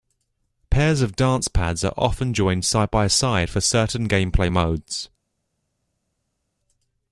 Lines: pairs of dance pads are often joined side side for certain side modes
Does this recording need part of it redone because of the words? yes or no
yes